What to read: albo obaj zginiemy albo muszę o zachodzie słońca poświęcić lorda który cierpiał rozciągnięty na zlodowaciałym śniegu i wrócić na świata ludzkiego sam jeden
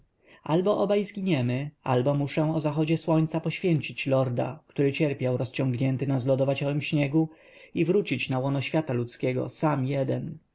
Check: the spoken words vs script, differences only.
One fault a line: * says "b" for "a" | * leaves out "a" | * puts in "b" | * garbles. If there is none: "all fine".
* puts in "łono"